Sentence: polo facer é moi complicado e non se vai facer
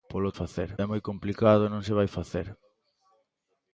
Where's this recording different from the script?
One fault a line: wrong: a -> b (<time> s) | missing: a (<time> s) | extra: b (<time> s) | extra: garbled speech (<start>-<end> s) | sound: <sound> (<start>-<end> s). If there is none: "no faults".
no faults